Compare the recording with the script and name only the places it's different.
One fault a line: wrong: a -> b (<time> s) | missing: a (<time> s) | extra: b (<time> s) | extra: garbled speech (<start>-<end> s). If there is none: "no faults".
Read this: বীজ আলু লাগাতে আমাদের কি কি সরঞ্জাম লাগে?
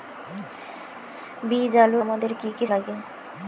missing: লাগাতে (2.0 s)
missing: সরঞ্জাম (2.6 s)